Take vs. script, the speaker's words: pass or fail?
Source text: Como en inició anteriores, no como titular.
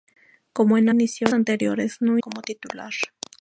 pass